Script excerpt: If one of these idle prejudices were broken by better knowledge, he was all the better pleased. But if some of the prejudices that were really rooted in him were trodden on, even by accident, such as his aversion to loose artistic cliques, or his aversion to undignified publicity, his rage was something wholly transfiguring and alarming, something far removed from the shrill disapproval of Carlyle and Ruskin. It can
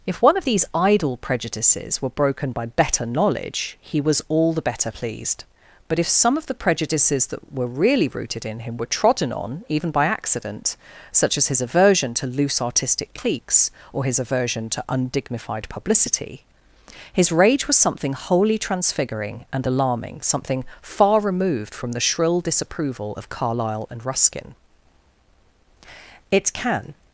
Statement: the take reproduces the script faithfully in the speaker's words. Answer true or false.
true